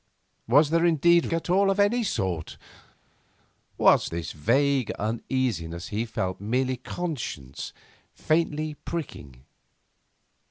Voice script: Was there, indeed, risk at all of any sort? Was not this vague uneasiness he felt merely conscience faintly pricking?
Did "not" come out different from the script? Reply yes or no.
yes